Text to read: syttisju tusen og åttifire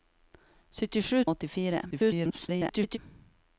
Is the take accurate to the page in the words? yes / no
no